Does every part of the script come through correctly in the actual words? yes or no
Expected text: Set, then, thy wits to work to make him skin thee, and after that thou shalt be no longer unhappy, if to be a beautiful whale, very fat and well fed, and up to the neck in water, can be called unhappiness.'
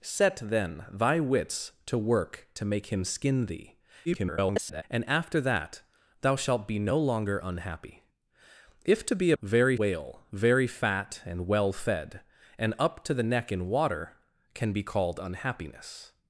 no